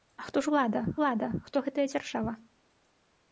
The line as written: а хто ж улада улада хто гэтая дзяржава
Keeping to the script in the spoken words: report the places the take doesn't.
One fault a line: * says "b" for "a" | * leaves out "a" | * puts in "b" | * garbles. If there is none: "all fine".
all fine